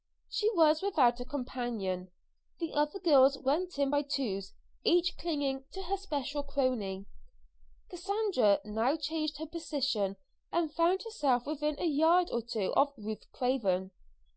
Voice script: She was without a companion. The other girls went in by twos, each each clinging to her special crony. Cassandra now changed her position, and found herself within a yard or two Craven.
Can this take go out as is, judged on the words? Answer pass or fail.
fail